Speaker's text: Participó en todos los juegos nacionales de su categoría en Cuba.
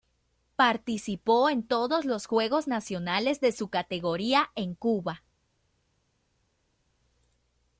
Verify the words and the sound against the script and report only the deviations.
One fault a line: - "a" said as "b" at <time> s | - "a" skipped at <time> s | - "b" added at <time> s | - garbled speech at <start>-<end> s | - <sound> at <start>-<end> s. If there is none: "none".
none